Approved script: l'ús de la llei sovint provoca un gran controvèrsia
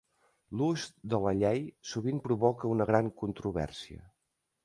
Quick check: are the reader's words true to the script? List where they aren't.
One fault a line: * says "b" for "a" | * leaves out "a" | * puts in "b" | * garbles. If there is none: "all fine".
* says "una" for "un"